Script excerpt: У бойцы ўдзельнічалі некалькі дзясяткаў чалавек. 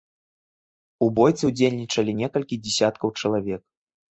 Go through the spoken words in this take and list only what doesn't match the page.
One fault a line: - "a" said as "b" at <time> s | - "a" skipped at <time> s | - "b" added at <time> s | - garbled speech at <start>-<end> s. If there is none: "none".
none